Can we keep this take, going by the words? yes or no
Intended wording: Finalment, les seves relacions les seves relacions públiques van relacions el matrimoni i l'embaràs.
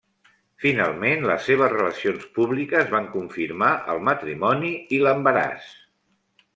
no